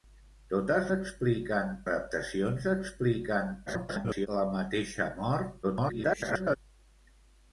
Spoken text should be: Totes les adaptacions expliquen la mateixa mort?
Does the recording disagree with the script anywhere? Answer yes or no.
yes